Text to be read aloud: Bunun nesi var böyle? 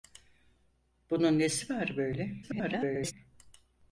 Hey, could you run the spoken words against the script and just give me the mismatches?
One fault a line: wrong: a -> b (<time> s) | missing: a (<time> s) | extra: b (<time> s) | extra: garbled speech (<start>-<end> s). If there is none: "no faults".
extra: garbled speech (2.4-3.1 s)